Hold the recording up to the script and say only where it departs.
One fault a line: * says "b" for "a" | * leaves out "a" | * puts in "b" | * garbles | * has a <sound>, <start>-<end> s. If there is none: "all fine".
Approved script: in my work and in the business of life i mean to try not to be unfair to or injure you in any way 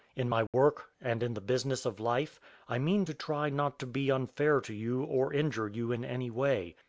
* has a dropout, 0.5-0.5 s
* puts in "you"